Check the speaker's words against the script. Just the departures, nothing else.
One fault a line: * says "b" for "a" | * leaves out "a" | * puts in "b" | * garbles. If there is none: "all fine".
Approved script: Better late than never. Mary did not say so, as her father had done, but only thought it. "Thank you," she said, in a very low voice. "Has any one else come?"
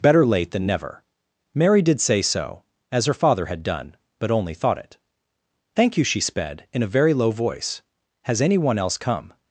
* leaves out "not"
* says "sped" for "said"